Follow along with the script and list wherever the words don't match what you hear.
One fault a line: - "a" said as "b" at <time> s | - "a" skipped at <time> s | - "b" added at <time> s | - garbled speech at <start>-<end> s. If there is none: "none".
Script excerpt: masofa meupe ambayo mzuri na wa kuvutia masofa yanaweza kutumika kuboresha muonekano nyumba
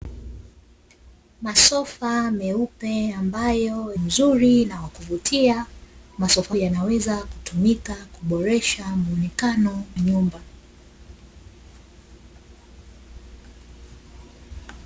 none